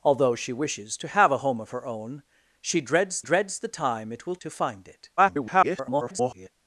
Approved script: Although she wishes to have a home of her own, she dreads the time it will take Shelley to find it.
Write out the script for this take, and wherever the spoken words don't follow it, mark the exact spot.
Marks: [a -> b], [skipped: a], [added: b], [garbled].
Although she wishes to have a home of her own, she dreads [added: dreads] the time it will [skipped: take Shelley] to find it. [garbled]